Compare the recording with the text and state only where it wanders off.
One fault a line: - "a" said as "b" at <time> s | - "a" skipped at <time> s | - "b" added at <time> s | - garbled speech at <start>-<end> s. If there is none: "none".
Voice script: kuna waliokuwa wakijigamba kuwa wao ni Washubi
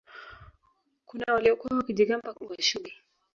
- "kuwa wao" skipped at 2.3 s